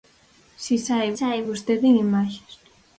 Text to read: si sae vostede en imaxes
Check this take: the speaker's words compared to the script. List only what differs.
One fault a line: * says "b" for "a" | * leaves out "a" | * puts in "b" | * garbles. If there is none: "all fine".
* puts in "sae"